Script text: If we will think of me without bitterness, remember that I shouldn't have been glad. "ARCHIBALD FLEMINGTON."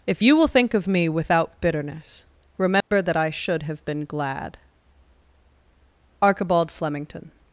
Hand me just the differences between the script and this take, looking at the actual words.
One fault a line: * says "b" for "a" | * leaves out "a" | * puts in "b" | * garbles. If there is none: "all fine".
* says "you" for "we"
* says "should" for "shouldn't"